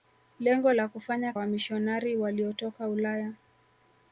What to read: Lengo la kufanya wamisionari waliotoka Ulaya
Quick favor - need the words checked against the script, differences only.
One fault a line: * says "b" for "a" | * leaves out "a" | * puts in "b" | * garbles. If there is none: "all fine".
all fine